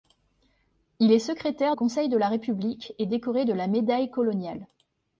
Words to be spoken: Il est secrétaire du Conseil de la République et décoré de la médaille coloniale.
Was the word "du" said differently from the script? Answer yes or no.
yes